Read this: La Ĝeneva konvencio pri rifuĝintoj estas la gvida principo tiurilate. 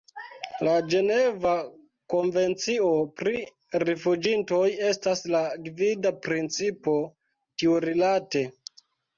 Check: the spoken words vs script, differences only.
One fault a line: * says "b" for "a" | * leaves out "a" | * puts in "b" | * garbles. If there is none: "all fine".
all fine